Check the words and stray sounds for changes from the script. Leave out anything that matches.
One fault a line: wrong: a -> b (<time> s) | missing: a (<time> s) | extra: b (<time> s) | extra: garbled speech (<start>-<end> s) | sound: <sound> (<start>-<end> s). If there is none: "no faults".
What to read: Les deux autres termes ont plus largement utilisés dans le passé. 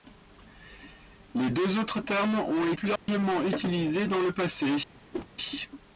sound: dropout (3.0-3.1 s)
sound: whoosh (5.1-5.3 s)